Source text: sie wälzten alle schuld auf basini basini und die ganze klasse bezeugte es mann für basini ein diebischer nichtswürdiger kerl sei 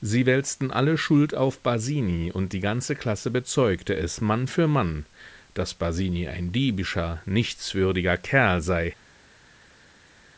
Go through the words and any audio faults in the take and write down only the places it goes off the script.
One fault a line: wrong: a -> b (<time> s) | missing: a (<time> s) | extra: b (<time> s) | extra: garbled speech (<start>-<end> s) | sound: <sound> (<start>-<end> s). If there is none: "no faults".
missing: basini (2.3 s)
extra: mann daß (4.7 s)